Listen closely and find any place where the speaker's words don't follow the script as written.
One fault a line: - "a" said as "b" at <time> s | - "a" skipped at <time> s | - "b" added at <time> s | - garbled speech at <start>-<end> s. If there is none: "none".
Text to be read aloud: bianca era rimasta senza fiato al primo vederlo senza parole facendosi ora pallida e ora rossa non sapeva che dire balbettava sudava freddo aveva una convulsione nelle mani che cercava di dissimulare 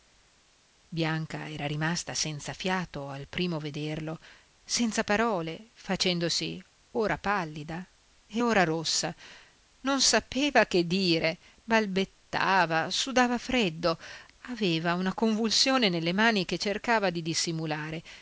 none